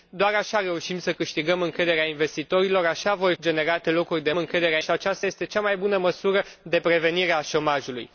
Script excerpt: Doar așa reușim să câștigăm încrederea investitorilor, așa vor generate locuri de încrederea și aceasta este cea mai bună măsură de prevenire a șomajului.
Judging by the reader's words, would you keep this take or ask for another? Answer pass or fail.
pass